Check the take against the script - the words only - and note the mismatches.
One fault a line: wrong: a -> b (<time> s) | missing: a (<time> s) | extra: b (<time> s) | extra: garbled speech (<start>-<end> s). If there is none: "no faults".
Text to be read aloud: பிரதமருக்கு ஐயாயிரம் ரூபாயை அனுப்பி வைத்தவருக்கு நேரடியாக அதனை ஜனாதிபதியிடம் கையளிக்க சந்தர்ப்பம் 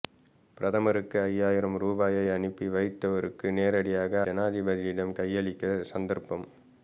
missing: அதனை (4.2 s)